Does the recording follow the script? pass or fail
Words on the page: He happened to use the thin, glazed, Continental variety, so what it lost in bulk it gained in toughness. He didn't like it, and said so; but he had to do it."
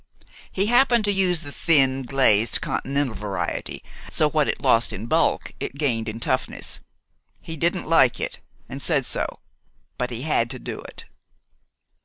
pass